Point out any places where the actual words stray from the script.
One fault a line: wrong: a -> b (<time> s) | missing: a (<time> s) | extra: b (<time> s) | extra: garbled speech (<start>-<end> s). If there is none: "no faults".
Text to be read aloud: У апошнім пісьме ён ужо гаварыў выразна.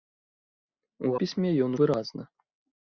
missing: апошнім (1.1 s)
missing: ужо гаварыў (1.7 s)